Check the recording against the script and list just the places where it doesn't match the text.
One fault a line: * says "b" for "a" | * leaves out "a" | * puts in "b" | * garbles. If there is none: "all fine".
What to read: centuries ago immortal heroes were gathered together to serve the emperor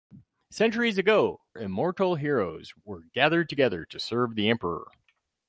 all fine